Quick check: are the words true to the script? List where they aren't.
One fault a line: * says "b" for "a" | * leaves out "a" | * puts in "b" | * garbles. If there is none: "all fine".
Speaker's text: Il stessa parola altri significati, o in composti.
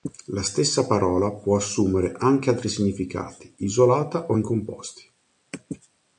* says "La" for "Il"
* puts in "può assumere anche"
* puts in "isolata"